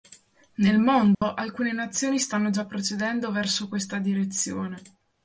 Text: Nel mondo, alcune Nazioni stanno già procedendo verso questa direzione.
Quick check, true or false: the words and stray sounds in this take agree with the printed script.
false